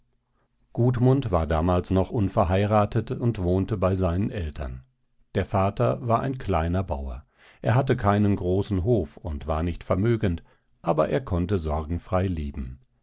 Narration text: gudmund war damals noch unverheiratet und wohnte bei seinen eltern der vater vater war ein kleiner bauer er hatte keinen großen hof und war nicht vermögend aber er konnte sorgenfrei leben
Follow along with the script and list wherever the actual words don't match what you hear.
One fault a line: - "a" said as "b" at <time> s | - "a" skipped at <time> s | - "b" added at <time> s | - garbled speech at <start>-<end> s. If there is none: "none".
- "vater" skipped at 6.0 s